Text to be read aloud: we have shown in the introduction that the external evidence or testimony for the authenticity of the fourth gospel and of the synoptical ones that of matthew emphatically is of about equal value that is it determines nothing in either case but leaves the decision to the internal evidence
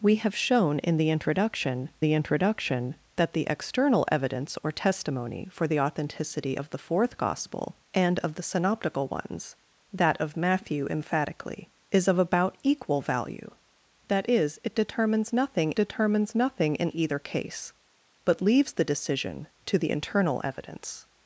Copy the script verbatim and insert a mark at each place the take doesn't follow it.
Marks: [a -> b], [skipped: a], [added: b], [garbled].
we have shown in the introduction [added: the introduction] that the external evidence or testimony for the authenticity of the fourth gospel and of the synoptical ones that of matthew emphatically is of about equal value that is it determines nothing [added: determines nothing] in either case but leaves the decision to the internal evidence